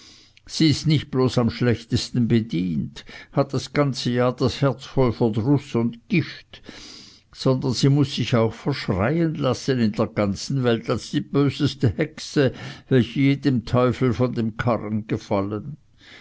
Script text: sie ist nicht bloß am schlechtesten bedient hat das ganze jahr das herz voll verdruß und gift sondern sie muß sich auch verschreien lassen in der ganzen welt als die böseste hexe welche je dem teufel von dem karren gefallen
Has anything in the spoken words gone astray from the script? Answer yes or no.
no